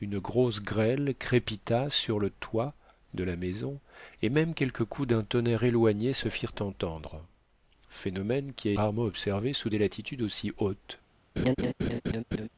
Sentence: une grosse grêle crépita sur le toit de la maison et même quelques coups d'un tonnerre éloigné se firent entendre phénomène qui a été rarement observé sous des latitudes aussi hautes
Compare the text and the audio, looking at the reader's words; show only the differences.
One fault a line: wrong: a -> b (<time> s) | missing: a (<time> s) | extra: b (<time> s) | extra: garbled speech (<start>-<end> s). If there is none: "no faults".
missing: été (8.7 s)